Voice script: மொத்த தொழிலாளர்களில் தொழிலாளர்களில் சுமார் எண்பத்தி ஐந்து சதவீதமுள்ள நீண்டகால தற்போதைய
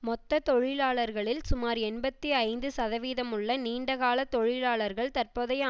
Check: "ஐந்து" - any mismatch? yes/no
no